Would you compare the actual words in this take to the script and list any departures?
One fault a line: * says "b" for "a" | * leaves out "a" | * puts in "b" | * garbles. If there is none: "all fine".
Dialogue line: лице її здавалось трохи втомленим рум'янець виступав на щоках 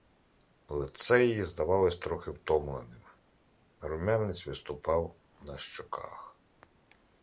all fine